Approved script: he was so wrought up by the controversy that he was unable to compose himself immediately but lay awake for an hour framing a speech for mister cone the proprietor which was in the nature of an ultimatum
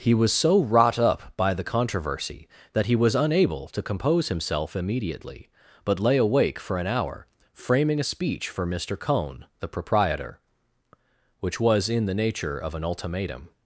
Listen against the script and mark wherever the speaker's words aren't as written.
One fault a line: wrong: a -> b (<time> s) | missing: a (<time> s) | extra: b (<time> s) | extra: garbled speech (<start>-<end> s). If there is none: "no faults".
no faults